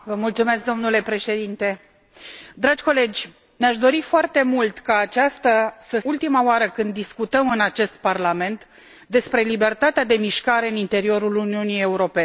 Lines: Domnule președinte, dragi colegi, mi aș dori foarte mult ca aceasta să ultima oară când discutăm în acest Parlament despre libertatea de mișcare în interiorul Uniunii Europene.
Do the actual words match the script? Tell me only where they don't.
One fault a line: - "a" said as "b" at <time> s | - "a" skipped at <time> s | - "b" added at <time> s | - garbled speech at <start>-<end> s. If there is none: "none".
none